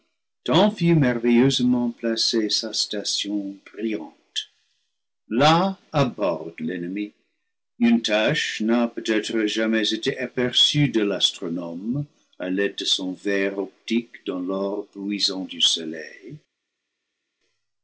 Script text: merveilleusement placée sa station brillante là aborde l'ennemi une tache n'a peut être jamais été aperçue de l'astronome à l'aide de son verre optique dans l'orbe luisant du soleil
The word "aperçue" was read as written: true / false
true